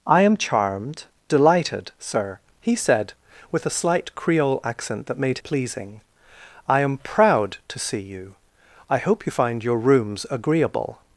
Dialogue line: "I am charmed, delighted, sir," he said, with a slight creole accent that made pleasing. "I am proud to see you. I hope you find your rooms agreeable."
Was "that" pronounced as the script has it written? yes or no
yes